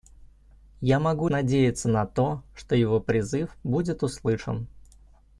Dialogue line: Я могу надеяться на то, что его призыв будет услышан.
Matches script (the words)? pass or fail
pass